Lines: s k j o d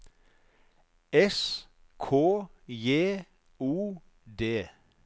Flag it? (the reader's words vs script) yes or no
no